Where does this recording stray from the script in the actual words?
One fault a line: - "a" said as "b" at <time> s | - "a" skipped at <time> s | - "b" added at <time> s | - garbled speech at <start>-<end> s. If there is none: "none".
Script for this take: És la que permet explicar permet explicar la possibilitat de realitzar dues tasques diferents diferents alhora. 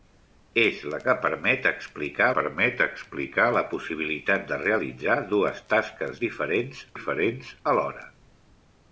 none